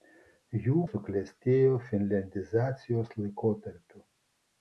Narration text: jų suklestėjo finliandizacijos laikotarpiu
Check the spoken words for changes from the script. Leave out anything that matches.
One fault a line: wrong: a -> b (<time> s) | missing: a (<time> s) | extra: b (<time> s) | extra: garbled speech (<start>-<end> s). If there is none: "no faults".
no faults